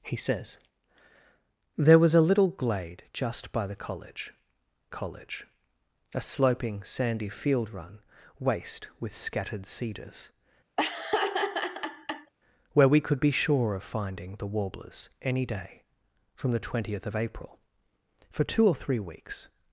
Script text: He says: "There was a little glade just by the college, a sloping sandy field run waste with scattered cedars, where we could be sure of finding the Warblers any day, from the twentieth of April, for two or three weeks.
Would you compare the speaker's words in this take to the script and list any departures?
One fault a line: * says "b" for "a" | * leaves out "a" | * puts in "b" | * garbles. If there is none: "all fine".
* puts in "college"